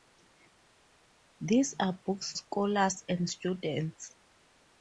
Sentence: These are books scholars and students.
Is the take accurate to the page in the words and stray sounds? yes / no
yes